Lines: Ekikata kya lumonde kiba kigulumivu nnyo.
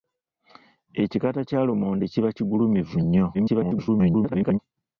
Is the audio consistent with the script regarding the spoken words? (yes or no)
no